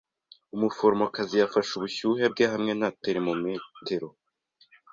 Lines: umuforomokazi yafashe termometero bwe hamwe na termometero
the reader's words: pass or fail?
fail